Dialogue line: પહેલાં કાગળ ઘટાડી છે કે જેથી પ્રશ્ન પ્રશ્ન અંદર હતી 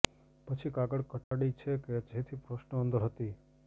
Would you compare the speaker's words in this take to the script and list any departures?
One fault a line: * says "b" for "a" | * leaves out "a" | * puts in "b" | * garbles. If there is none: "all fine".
* says "પછી" for "પહેલાં"
* leaves out "પ્રશ્ન"